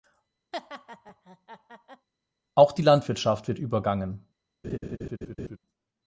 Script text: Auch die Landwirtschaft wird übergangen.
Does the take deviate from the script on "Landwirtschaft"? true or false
false